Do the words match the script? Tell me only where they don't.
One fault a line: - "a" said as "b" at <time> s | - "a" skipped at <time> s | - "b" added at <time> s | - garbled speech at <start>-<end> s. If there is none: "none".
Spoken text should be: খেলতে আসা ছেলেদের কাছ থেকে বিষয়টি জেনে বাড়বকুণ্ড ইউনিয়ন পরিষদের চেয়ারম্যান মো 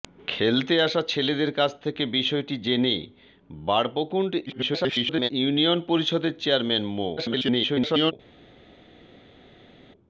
- garbled speech at 4.5-5.3 s
- garbled speech at 7.2-8.1 s